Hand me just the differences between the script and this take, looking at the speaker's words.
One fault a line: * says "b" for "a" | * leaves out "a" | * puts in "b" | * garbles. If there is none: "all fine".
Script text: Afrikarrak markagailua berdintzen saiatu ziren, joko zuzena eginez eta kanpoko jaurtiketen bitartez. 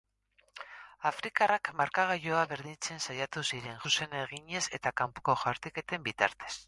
* leaves out "joko"